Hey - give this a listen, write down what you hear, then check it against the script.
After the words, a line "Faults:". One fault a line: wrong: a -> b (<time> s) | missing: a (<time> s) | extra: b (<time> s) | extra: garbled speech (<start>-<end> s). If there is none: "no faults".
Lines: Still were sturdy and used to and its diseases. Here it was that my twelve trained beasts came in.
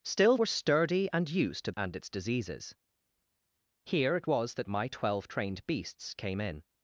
Still were sturdy and used to and its diseases. Here it was that my twelve trained beasts came in.
Faults:
no faults